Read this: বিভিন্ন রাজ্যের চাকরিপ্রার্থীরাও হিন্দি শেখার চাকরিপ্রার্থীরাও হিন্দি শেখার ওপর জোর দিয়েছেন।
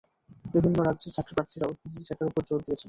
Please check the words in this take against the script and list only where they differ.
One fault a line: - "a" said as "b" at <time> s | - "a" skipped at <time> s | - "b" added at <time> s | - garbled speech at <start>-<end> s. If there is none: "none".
- "চাকরিপ্রার্থীরাও হিন্দি শেখার" skipped at 2.3 s